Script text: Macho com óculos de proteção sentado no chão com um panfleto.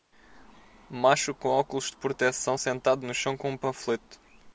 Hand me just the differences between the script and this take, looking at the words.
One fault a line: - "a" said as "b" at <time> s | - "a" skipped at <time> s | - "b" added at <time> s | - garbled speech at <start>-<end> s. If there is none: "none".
none